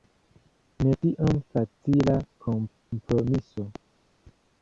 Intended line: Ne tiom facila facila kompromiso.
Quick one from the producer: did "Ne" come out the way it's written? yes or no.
yes